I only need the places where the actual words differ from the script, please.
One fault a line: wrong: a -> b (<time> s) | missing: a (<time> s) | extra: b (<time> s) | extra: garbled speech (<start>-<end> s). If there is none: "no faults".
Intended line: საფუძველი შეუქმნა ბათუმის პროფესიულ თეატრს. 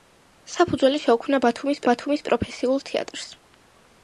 extra: ბათუმის (1.9 s)